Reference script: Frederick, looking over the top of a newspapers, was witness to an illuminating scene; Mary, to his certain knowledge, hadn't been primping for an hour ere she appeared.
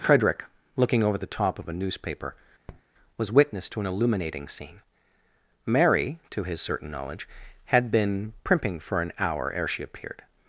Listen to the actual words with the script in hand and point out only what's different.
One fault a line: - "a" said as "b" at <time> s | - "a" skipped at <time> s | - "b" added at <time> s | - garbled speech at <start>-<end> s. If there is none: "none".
- "newspapers" said as "newspaper" at 1.7 s
- "hadn't" said as "had" at 7.7 s